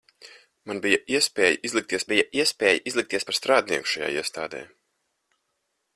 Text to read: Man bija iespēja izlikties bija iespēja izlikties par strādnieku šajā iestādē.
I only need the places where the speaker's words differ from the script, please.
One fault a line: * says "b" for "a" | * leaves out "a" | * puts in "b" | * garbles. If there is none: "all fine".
all fine